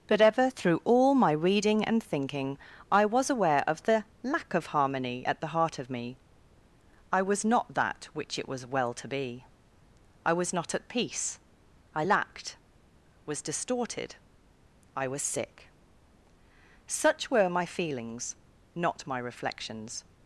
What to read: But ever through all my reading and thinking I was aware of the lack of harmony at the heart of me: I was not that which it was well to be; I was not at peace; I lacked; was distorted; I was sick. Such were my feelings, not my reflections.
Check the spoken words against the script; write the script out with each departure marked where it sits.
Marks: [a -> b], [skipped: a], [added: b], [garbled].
But ever through all my reading and thinking I was aware of the lack of harmony at the heart of me: I was not that which it was well to be; I was not at peace; I lacked; was distorted; I was sick. Such were my feelings, not my reflections.